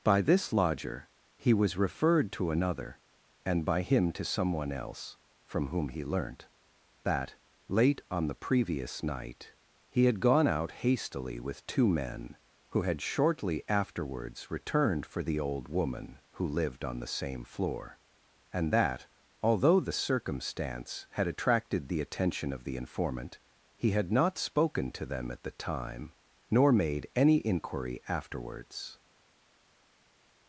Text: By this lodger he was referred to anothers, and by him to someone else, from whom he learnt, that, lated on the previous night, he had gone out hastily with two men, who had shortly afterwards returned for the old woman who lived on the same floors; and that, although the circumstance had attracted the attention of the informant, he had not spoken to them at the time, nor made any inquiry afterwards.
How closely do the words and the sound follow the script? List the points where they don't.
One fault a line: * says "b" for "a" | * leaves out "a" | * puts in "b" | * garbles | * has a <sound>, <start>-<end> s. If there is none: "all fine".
* says "another" for "anothers"
* says "late" for "lated"
* says "floor" for "floors"